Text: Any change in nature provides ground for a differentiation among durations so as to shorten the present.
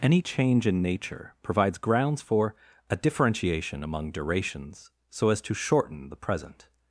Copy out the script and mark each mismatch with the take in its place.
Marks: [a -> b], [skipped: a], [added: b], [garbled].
Any change in nature provides [ground -> grounds] for a differentiation among durations so as to shorten the present.